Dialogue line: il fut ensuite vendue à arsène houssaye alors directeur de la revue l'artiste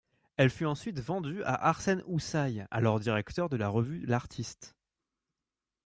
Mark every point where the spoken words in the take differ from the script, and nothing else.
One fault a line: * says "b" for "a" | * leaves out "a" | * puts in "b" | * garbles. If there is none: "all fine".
* says "elle" for "il"